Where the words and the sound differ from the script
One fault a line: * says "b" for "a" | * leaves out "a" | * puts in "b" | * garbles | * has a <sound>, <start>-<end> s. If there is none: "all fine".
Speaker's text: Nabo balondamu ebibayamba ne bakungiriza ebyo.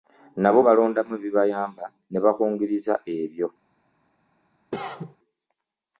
* has a cough, 4.7-5.2 s